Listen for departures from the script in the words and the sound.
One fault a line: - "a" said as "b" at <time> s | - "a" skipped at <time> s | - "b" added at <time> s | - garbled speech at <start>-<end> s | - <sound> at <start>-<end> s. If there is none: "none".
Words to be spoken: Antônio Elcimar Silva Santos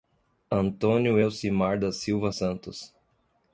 - "da" added at 1.8 s